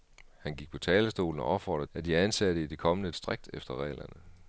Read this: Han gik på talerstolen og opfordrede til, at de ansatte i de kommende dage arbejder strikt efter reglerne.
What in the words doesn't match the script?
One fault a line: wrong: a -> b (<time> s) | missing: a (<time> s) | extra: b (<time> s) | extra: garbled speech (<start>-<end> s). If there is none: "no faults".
missing: til (1.9 s)
missing: dage arbejder (3.1 s)